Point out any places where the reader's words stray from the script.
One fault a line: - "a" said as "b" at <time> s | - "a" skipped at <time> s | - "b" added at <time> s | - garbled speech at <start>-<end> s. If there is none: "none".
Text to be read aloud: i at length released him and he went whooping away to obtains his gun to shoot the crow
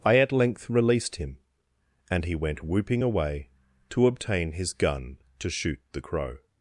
- "obtains" said as "obtain" at 4.1 s